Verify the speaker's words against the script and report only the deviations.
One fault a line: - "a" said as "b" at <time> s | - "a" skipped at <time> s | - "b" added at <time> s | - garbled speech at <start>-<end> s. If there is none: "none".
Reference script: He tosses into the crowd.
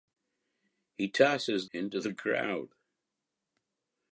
none